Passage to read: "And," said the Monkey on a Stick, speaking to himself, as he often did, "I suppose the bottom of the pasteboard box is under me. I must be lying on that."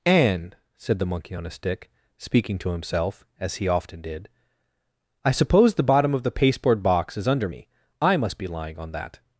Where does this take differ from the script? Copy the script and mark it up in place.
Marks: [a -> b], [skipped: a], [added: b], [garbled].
"And," said the Monkey on a Stick, speaking to himself, as he often did, "I suppose the bottom of the pasteboard box is under me. I must be lying on that."